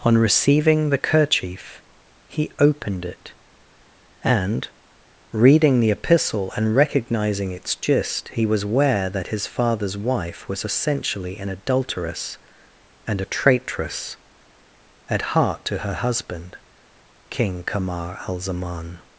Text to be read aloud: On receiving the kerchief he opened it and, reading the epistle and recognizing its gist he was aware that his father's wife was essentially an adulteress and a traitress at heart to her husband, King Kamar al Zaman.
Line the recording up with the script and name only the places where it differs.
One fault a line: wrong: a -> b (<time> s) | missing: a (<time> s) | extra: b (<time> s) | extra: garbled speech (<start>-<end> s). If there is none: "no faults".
no faults